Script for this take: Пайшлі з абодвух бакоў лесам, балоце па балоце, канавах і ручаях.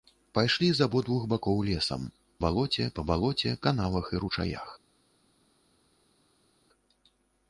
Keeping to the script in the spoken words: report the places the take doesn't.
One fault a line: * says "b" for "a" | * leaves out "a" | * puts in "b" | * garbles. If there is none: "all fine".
all fine